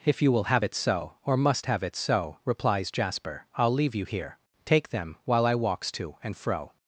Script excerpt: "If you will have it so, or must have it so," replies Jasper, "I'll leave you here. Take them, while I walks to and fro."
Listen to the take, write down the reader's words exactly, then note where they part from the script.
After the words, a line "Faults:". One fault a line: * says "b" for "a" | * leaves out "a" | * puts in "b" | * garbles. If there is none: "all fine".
"If you will have it so, or must have it so," replies Jasper, "I'll leave you here. Take them, while I walks to and fro."
Faults:
all fine